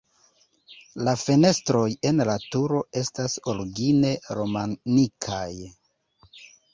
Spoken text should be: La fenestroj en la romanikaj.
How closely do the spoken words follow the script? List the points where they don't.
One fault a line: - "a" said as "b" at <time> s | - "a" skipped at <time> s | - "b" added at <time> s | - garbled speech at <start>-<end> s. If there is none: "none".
- "turo estas origine" added at 2.5 s